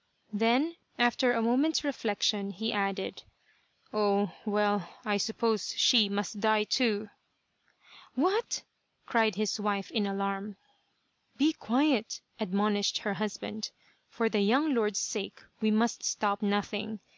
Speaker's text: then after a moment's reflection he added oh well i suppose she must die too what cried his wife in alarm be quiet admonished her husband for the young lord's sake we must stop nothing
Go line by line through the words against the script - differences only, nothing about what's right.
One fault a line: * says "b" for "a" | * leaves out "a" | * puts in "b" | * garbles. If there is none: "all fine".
all fine